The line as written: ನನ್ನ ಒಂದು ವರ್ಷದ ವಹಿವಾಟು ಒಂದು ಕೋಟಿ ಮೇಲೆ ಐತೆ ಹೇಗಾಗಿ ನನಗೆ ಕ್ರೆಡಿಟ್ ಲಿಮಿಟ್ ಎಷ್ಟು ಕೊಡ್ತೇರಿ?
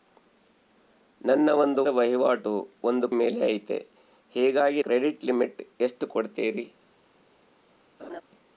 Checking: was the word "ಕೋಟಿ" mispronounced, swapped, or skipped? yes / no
yes